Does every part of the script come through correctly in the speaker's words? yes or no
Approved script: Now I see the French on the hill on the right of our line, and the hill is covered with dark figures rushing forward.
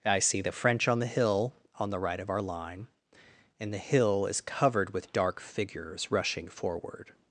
no